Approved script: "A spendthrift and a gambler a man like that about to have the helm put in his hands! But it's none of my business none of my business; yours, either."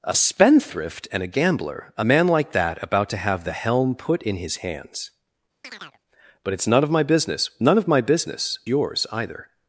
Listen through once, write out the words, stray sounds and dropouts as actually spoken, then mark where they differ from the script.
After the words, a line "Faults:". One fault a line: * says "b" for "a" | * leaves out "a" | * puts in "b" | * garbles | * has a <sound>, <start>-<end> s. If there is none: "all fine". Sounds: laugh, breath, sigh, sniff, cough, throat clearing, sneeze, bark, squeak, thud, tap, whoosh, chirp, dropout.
"A spendthrift and a gambler a man like that about to have the helm put in his hands! But it's none of my business none of my business; yours, either."
Faults:
* has a chirp, 5.6-6.0 s